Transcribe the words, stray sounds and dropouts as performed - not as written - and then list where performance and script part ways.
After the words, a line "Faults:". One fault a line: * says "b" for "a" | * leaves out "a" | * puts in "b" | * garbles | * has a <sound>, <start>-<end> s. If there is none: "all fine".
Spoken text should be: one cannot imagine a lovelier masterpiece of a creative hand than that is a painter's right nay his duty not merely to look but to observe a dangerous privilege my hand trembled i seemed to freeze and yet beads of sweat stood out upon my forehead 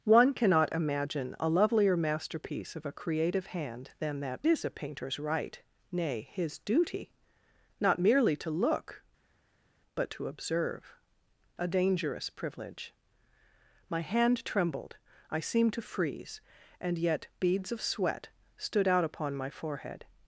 one cannot imagine a lovelier masterpiece of a creative hand than that is a painter's right nay his duty not merely to look but to observe a dangerous privilege my hand trembled i seemed to freeze and yet beads of sweat stood out upon my forehead
Faults:
all fine